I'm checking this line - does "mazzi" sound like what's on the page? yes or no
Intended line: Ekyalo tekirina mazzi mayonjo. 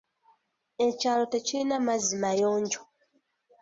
yes